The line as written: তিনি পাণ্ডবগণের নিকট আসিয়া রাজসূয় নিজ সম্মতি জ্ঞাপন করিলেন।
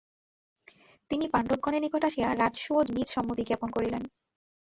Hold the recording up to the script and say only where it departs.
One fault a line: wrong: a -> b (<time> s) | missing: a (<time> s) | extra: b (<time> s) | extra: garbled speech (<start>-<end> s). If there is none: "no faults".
no faults